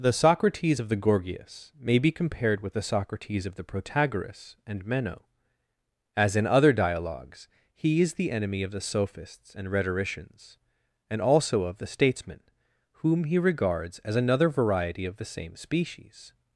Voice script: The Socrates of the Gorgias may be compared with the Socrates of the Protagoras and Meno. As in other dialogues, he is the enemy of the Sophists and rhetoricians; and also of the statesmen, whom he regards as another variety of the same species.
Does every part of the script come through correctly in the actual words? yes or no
yes